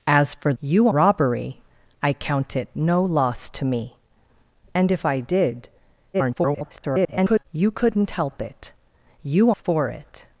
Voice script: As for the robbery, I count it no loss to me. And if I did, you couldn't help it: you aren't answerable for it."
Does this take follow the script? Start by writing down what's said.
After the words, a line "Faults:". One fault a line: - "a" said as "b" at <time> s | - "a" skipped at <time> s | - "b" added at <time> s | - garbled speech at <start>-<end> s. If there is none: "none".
As for you robbery, I count it no loss to me. And if I did, [garbled] you couldn't help it: you for it."
Faults:
- "the" said as "you" at 0.6 s
- garbled speech at 6.1-7.4 s
- "aren't answerable" skipped at 9.5 s